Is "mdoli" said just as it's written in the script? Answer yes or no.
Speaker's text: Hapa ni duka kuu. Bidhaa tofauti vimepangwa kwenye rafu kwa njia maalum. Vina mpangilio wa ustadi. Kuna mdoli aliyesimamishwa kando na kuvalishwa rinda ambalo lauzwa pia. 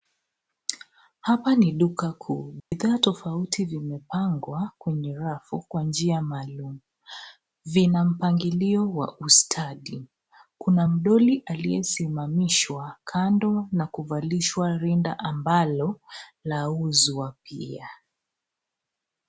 yes